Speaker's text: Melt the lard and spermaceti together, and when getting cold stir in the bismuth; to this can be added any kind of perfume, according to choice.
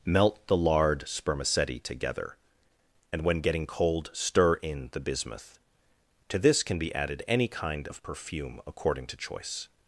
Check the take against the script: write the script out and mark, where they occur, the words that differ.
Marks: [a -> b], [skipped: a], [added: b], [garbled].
Melt the lard [skipped: and] spermaceti together, and when getting cold stir in the bismuth; to this can be added any kind of perfume, according to choice.